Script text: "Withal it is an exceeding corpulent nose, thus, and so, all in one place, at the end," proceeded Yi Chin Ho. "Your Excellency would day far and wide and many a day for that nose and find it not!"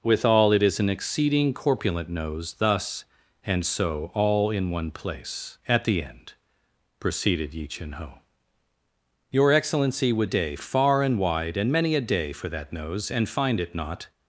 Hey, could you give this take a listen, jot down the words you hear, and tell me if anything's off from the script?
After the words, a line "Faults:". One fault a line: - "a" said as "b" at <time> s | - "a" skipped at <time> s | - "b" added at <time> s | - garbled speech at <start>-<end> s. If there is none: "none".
"Withal it is an exceeding corpulent nose, thus, and so, all in one place, at the end," proceeded Yi Chin Ho. "Your Excellency would day far and wide and many a day for that nose and find it not!"
Faults:
none